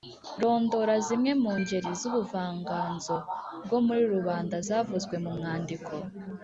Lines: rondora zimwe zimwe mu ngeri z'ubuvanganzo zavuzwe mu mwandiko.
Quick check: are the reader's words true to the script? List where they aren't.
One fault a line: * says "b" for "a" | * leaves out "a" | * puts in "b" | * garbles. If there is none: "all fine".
* leaves out "zimwe"
* puts in "bwo muri rubanda"